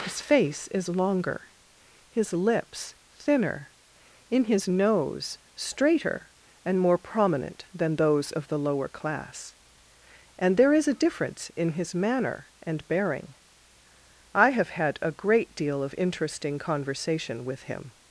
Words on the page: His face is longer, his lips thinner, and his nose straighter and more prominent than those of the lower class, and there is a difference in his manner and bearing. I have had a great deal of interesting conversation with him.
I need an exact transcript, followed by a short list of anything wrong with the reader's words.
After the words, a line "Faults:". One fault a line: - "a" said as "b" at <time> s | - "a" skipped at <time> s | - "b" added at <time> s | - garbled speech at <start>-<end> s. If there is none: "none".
His face is longer, his lips thinner, in his nose straighter and more prominent than those of the lower class, and there is a difference in his manner and bearing. I have had a great deal of interesting conversation with him.
Faults:
- "and" said as "in" at 4.3 s